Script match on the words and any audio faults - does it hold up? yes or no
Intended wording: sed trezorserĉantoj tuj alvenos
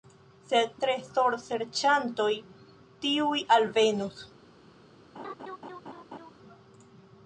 no